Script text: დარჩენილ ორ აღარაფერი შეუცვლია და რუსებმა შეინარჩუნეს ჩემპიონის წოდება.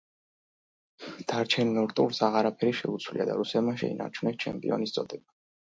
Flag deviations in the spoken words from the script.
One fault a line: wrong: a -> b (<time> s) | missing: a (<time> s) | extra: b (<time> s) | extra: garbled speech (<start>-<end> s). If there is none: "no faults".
extra: ტურს (2.0 s)